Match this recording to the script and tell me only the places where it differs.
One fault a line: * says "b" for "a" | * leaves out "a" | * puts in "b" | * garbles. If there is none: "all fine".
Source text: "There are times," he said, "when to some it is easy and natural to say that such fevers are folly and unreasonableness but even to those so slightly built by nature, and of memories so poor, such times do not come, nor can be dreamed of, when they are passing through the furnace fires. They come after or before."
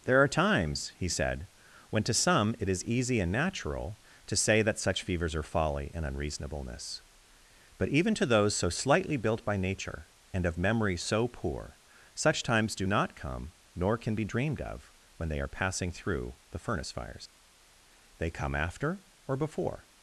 * says "memory" for "memories"